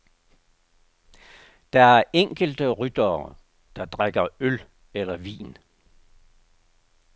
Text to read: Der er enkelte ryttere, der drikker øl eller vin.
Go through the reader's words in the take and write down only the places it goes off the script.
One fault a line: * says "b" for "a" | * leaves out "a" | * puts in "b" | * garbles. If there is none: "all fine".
all fine